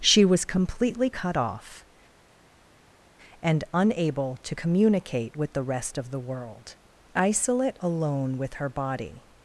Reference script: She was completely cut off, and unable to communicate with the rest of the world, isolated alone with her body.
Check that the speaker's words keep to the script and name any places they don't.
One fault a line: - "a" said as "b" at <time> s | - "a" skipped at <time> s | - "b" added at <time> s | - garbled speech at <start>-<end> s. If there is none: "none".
- "isolated" said as "isolate" at 7.1 s